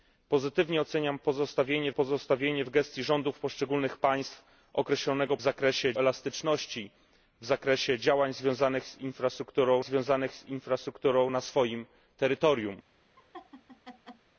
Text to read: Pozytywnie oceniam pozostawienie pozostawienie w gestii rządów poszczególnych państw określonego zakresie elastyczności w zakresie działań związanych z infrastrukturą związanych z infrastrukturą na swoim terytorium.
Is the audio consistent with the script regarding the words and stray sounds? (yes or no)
no